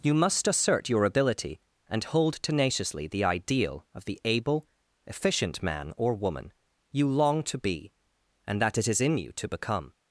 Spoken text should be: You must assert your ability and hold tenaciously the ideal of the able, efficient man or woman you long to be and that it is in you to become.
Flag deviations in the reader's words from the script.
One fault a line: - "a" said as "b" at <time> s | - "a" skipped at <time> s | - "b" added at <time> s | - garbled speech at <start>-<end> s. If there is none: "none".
none